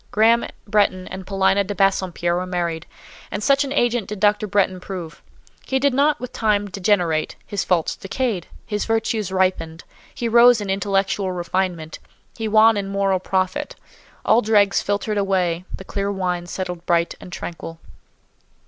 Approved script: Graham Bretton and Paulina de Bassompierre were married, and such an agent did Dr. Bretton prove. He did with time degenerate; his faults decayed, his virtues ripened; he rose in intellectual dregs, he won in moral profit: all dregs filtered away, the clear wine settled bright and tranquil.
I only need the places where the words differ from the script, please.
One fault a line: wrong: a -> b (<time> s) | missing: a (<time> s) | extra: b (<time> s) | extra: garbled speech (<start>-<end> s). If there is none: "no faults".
extra: not (5.9 s)
wrong: dregs -> refinement (11.3 s)